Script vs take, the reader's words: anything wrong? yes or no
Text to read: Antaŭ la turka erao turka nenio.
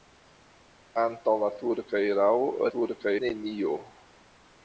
no